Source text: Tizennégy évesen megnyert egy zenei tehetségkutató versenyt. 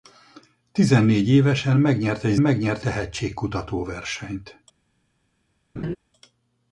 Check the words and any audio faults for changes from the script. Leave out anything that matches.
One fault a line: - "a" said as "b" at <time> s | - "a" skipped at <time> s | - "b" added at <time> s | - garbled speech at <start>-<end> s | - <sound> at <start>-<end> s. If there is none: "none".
- "zenei" said as "megnyert" at 2.4 s
- laugh at 5.8-6.0 s